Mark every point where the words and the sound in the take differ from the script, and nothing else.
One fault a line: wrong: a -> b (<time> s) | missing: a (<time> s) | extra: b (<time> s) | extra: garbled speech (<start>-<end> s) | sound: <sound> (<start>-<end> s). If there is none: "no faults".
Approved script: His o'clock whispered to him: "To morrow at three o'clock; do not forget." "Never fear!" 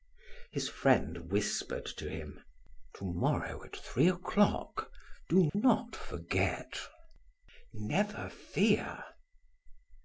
wrong: o'clock -> friend (0.6 s)
sound: dropout (5.5-5.5 s)